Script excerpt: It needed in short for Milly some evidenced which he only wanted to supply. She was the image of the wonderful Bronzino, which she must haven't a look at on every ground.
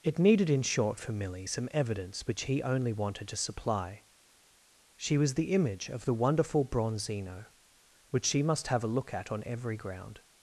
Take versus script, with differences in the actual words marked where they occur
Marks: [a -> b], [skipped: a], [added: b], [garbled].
It needed in short for Milly some [evidenced -> evidence] which he only wanted to supply. She was the image of the wonderful Bronzino, which she must [haven't -> have] a look at on every ground.